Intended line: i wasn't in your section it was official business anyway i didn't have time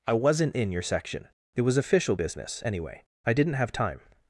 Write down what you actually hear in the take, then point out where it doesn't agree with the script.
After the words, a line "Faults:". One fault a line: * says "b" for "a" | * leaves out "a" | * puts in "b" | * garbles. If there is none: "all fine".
i wasn't in your section it was official business anyway i didn't have time
Faults:
all fine